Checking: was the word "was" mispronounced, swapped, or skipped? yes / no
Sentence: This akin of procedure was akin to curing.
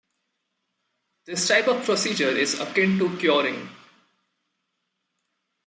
yes